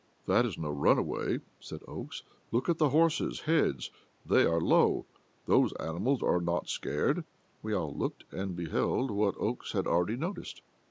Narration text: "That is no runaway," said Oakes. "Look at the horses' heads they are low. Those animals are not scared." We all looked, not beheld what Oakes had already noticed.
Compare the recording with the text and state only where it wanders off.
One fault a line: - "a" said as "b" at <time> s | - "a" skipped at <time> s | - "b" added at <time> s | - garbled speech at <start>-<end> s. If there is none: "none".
- "not" said as "and" at 8.3 s